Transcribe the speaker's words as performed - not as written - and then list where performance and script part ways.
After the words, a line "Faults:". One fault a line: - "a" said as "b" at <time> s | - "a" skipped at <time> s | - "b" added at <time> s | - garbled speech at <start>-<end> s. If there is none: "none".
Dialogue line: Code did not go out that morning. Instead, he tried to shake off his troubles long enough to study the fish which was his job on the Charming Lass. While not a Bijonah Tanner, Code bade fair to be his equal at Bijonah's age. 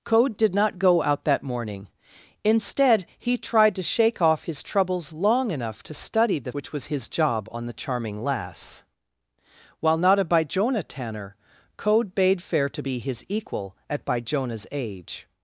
Code did not go out that morning. Instead, he tried to shake off his troubles long enough to study the which was his job on the Charming Lass. While not a Bijonah Tanner, Code bade fair to be his equal at Bijonah's age.
Faults:
- "fish" skipped at 6.5 s